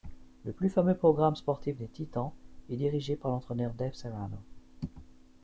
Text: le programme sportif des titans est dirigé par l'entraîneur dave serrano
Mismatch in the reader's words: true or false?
true